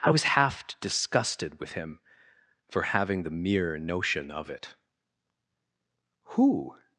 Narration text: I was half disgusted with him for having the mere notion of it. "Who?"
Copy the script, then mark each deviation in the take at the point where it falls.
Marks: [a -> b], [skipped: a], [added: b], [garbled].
I was half disgusted with him for having the mere notion of it. "Who?"